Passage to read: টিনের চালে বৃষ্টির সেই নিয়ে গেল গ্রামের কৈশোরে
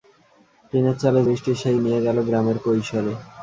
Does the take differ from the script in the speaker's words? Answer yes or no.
no